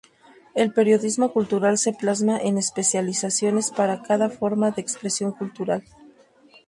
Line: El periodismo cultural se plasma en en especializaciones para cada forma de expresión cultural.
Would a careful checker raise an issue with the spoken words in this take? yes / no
yes